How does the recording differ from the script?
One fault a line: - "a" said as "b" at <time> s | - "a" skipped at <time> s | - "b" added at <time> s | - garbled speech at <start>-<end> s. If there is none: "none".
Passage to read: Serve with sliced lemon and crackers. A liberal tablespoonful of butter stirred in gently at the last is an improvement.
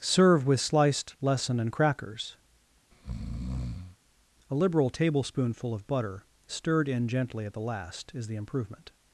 - "lemon" said as "lesson" at 1.2 s
- "an" said as "the" at 8.3 s